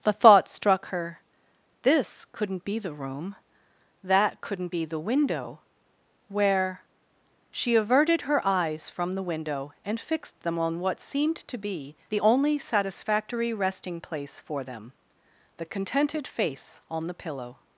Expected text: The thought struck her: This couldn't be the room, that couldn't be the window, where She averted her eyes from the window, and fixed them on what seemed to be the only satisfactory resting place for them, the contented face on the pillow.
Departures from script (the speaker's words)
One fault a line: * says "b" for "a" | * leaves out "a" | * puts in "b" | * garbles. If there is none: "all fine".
all fine